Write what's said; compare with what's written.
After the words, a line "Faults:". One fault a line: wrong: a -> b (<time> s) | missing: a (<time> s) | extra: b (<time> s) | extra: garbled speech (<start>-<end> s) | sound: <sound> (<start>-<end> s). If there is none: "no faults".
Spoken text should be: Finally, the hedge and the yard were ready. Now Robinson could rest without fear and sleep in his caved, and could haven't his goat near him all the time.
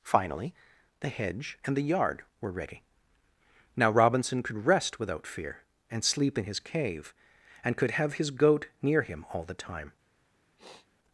Finally, the hedge and the yard were ready. Now Robinson could rest without fear and sleep in his cave, and could have his goat near him all the time.
Faults:
wrong: caved -> cave (6.6 s)
wrong: haven't -> have (7.9 s)
sound: sniff (10.6-10.9 s)